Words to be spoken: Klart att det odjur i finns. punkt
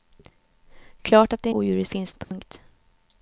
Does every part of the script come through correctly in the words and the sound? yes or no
no